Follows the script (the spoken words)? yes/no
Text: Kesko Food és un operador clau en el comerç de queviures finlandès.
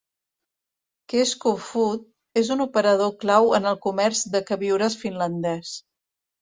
yes